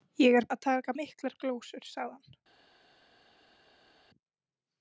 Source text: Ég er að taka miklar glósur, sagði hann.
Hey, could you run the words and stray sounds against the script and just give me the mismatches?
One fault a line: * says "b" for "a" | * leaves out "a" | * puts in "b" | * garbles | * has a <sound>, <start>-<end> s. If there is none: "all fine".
all fine